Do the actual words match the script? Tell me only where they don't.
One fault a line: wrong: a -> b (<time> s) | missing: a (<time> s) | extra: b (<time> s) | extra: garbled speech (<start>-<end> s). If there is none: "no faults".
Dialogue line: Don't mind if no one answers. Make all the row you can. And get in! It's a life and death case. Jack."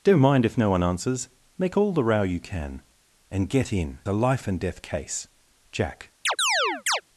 missing: It's (4.0 s)